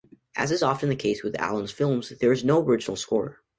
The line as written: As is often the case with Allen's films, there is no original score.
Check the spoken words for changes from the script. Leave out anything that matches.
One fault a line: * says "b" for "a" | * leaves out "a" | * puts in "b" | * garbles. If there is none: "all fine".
all fine